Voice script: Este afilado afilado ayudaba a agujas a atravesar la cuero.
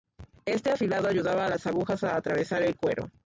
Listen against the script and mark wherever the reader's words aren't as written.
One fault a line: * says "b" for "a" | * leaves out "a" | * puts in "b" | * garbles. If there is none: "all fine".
* leaves out "afilado"
* puts in "las"
* says "el" for "la"